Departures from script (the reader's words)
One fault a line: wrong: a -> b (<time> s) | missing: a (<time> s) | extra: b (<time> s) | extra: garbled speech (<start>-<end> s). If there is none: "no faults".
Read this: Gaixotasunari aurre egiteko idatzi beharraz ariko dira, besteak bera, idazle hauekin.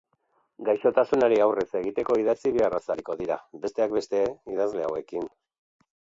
wrong: bera -> beste (4.0 s)